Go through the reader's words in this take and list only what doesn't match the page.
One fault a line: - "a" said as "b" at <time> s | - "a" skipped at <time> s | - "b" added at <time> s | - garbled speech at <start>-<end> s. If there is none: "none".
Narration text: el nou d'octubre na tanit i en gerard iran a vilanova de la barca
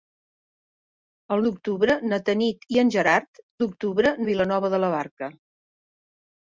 - "nou" skipped at 1.4 s
- "iran" said as "d'octubre" at 3.6 s